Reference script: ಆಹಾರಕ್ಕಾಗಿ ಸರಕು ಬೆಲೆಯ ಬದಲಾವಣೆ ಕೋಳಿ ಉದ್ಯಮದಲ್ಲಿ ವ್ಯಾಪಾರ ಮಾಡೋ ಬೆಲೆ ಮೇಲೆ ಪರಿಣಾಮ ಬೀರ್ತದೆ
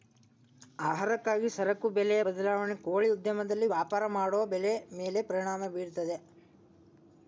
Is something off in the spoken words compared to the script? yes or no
no